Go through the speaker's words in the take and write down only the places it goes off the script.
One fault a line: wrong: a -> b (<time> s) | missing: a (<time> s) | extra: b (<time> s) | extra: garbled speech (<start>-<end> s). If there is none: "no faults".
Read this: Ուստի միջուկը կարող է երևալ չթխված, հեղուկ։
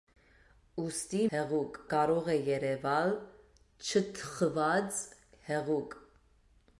wrong: միջուկը -> հեղուկ (1.3 s)